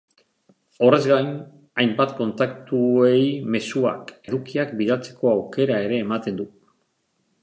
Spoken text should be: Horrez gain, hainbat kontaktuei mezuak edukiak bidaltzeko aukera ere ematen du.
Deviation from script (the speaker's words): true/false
false